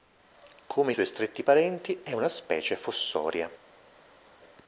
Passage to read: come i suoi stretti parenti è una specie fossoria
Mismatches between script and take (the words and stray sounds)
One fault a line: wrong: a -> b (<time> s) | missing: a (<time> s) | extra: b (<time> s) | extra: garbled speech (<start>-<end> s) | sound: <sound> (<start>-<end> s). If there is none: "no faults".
no faults